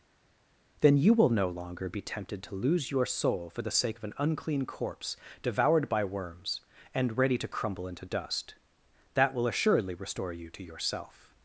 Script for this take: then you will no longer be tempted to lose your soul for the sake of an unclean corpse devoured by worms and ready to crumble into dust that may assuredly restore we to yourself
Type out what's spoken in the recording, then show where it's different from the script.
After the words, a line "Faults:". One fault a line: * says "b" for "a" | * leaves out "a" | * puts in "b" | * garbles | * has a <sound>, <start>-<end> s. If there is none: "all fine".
then you will no longer be tempted to lose your soul for the sake of an unclean corpse devoured by worms and ready to crumble into dust that will assuredly restore you to yourself
Faults:
* says "will" for "may"
* says "you" for "we"